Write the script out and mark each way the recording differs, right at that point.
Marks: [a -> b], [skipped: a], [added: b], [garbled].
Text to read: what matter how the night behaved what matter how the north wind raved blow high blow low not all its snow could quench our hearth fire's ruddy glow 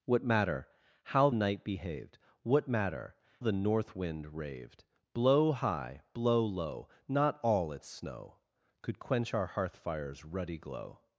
what matter how [skipped: the] night behaved what matter [skipped: how] the north wind raved blow high blow low not all its snow could quench our hearth fire's ruddy glow